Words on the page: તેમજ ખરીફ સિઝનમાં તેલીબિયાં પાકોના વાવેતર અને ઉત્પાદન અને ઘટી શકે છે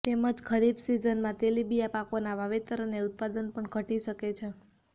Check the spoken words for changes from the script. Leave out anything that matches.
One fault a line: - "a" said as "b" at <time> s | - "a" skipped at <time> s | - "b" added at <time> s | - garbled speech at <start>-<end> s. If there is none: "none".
- "અને" said as "પણ" at 3.5 s